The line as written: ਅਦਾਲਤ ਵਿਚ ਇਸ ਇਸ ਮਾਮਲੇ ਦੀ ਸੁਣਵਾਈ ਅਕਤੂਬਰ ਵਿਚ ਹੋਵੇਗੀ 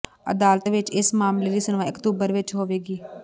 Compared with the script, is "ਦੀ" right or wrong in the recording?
right